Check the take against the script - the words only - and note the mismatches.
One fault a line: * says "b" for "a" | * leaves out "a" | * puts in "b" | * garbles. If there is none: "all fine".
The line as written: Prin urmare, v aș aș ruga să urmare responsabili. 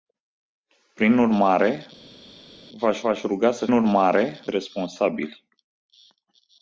all fine